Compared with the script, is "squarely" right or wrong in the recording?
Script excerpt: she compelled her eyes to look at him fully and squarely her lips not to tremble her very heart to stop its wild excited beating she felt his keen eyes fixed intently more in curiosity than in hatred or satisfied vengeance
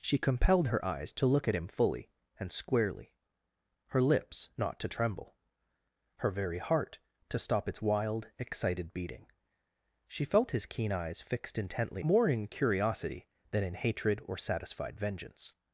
right